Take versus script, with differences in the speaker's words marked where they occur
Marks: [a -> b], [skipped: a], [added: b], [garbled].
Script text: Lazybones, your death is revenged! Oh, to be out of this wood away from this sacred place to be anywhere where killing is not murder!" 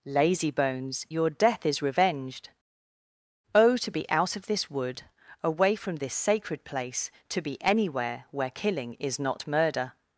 Lazybones, your death is revenged! Oh, to be out of this wood away from this sacred place to be anywhere where killing is not murder!"